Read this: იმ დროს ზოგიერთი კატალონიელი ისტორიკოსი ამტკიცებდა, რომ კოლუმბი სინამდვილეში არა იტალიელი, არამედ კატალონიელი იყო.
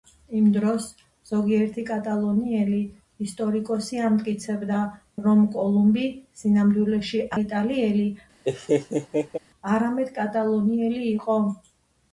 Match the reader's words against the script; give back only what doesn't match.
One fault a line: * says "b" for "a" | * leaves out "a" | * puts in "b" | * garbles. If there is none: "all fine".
* leaves out "არა"